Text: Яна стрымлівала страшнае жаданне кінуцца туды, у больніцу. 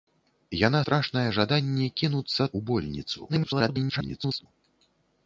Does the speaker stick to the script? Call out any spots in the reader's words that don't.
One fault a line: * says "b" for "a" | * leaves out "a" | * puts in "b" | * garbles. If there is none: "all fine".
* leaves out "стрымлівала"
* leaves out "туды"
* garbles